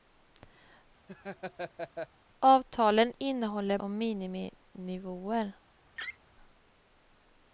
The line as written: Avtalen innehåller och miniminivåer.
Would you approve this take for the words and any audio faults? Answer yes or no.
no